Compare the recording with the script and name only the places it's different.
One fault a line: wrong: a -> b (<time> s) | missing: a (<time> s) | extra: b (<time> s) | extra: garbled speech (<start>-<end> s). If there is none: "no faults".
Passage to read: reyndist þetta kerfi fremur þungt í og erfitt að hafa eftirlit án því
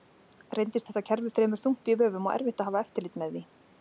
extra: vöfum (2.0 s)
wrong: án -> með (3.2 s)